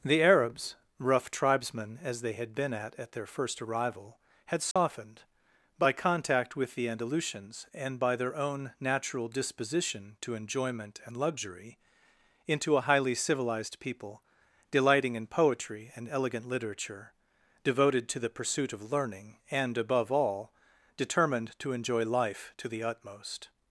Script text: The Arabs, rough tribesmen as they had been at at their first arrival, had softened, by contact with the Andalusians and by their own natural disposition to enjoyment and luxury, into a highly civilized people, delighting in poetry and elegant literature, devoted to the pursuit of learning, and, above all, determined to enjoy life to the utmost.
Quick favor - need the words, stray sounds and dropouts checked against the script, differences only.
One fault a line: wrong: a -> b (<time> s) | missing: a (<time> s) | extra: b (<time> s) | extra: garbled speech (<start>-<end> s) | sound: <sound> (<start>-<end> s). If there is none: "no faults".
sound: dropout (4.7-4.8 s)